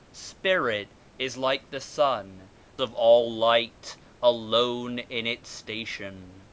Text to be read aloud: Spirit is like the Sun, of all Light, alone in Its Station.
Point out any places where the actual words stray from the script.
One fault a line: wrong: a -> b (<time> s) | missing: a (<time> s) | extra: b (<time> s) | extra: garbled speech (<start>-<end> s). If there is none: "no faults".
no faults